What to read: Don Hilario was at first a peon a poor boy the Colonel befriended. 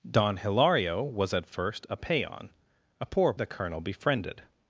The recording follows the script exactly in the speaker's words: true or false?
false